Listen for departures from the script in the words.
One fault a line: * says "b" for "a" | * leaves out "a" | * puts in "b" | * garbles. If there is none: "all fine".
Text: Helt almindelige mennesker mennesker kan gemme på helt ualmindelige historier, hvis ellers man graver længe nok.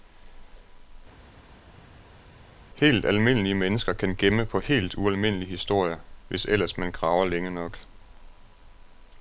* leaves out "mennesker"